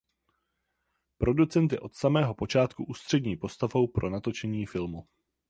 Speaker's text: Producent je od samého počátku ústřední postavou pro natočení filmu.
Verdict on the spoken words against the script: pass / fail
pass